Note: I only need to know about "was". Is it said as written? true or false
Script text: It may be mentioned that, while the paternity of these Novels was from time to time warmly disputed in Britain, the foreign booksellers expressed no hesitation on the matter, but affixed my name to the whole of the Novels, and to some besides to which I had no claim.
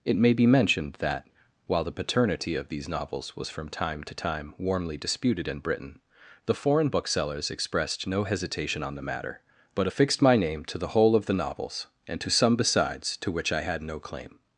true